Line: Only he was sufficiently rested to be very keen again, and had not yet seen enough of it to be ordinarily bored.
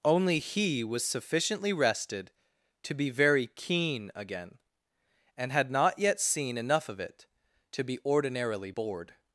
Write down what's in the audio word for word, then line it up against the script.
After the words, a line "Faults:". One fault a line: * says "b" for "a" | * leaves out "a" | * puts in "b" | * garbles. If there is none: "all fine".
Only he was sufficiently rested to be very keen again, and had not yet seen enough of it to be ordinarily bored.
Faults:
all fine